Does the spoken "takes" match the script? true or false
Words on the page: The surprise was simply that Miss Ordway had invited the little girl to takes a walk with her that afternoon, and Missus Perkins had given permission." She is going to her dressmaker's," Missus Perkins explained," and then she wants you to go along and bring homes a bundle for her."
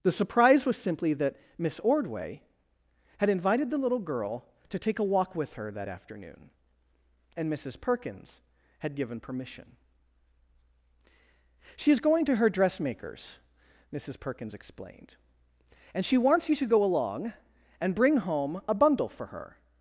false